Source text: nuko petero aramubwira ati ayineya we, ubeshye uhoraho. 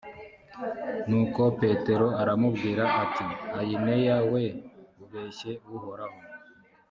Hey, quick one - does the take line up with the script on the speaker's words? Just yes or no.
yes